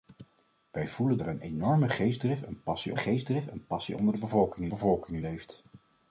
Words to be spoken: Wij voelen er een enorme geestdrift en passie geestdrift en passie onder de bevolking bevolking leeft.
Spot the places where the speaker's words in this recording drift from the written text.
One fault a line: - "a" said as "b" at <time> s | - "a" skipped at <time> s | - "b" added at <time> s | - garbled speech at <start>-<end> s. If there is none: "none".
none